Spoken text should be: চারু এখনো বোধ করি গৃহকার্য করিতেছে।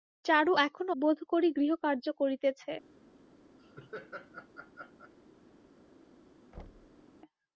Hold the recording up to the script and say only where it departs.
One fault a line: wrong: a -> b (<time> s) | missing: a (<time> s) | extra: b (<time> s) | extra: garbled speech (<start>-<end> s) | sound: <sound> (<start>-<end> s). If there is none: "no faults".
sound: laugh (3.6-5.1 s)
sound: thud (6.5-7.0 s)